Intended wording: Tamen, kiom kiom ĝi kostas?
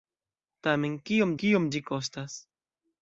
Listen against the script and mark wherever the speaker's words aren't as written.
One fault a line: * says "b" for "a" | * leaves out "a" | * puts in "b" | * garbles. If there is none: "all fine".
all fine